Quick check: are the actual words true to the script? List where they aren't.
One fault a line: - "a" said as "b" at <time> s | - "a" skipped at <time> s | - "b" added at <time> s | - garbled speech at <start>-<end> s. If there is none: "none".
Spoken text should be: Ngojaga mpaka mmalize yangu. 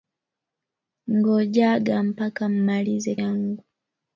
none